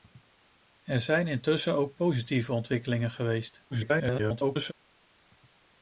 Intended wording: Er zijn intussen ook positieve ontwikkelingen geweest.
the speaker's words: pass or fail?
fail